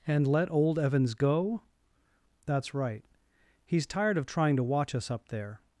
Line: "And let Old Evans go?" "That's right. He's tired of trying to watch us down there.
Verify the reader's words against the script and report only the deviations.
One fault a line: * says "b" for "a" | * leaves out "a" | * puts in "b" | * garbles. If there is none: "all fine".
* says "up" for "down"